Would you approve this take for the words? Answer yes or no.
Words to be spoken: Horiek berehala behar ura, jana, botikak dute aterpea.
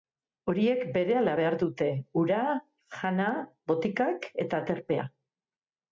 no